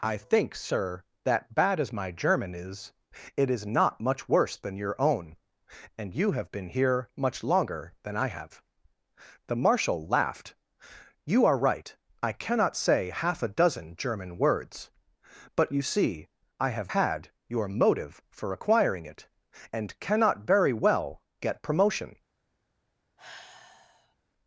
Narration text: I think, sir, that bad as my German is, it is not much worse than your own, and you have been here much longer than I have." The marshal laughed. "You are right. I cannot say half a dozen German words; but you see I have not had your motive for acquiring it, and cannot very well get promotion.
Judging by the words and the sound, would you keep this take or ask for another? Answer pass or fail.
fail